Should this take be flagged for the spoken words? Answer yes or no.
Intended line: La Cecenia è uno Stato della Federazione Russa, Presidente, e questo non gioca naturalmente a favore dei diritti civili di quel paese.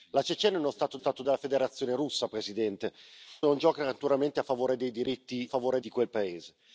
yes